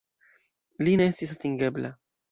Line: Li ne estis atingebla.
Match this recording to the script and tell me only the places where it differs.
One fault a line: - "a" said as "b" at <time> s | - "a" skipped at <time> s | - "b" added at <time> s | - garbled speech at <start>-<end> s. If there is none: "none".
none